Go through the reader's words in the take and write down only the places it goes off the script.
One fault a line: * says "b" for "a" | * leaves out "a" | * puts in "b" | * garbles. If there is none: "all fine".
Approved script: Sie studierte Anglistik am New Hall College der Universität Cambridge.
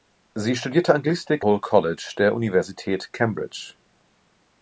* leaves out "am New"